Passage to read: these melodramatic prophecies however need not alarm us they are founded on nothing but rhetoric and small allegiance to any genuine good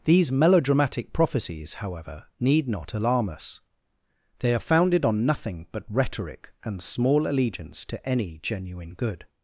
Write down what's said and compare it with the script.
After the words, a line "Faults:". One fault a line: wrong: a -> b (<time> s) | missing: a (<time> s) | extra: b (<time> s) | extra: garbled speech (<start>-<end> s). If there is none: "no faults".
these melodramatic prophecies however need not alarm us they are founded on nothing but rhetoric and small allegiance to any genuine good
Faults:
no faults